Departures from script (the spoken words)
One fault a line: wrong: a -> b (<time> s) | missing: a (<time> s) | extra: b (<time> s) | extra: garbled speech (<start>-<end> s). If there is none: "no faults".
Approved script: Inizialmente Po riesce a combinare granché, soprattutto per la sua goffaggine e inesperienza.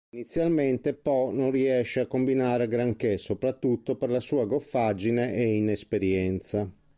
extra: non (1.3 s)